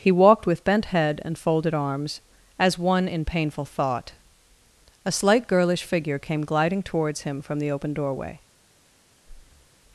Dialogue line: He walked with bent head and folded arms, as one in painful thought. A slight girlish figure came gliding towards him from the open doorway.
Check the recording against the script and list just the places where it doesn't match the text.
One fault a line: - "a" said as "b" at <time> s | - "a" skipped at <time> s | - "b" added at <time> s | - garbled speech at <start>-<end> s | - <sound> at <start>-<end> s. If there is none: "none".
- breath at 9.2-9.7 s